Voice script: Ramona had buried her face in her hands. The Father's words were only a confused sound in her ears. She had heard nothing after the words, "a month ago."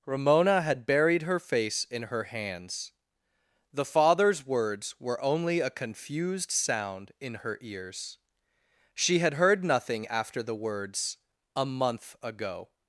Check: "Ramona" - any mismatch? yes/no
no